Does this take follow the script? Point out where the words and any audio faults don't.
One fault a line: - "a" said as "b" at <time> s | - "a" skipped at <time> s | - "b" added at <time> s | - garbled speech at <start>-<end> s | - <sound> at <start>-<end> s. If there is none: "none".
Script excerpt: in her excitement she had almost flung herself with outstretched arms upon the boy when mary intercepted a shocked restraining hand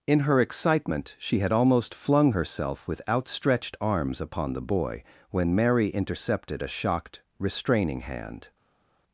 none